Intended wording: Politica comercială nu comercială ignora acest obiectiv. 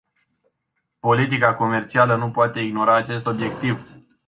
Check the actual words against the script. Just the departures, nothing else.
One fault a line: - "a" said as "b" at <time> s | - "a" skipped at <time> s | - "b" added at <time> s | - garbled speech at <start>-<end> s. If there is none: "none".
- "comercială" said as "poate" at 2.3 s